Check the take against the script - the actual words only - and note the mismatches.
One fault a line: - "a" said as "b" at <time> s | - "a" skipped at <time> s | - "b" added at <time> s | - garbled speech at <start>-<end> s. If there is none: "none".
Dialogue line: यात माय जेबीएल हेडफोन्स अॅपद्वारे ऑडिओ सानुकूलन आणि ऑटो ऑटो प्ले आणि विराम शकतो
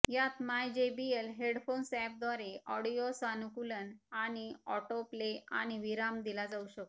- "ऑटो" skipped at 5.0 s
- "दिला जाऊ" added at 6.2 s